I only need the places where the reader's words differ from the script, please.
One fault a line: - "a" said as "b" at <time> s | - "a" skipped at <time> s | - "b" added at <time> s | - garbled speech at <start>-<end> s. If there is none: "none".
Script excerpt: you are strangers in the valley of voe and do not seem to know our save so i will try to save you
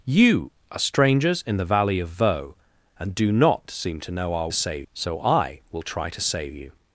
none